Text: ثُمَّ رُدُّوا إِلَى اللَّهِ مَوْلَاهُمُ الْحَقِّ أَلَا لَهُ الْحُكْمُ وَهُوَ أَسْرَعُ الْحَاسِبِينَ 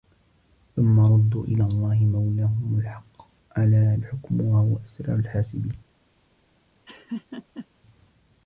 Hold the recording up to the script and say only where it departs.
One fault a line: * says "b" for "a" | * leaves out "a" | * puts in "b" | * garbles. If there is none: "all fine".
* leaves out "لَهُ"